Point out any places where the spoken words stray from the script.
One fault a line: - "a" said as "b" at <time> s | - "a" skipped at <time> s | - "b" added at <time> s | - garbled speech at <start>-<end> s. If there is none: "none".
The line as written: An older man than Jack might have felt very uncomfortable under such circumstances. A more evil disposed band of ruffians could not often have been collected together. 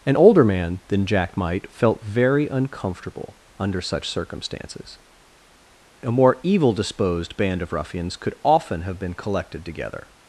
- "have" skipped at 1.7 s
- "not" skipped at 8.3 s